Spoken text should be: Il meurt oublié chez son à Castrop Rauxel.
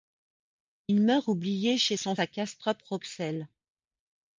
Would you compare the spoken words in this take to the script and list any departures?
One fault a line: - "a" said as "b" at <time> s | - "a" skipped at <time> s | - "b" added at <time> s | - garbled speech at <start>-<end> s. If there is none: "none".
none